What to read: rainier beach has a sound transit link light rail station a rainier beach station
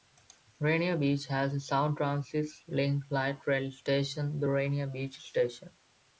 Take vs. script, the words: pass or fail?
fail